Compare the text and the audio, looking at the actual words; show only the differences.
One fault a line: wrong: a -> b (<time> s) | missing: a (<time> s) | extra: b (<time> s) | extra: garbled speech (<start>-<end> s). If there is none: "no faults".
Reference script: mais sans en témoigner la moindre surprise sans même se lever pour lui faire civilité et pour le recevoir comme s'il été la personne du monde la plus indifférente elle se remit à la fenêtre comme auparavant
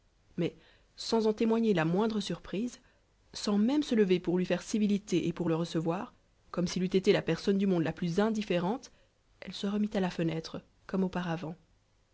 extra: eût (6.8 s)